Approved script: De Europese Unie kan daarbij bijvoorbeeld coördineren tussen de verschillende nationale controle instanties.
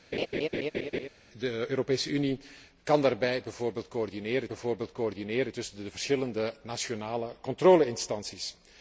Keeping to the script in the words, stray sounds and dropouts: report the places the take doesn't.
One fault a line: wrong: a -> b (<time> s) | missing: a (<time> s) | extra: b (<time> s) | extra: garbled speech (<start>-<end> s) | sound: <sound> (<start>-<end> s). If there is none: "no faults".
sound: laugh (0.1-1.1 s)
extra: bijvoorbeeld coördineren (4.5 s)